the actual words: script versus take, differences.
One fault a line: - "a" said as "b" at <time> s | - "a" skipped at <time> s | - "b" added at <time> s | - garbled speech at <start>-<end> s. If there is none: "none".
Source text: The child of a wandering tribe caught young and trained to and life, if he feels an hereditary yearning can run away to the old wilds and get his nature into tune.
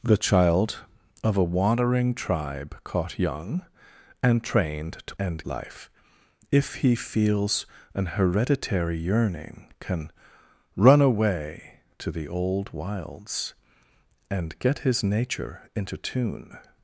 none